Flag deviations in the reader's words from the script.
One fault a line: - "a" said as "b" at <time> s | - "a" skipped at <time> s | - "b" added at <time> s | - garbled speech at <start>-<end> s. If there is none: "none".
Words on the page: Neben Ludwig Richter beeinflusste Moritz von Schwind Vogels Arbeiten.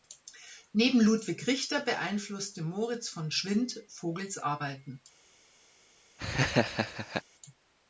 none